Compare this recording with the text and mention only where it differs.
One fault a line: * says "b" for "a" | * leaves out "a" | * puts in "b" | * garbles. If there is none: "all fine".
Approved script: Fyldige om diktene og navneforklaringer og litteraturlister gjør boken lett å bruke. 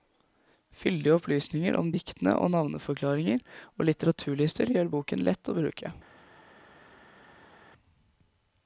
* puts in "opplysninger"